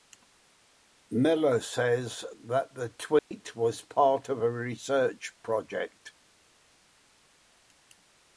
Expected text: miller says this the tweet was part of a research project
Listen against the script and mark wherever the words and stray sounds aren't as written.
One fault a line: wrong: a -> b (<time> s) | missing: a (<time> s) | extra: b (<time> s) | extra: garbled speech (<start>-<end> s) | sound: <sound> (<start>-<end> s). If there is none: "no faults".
wrong: this -> that (2.5 s)
sound: dropout (3.2-3.3 s)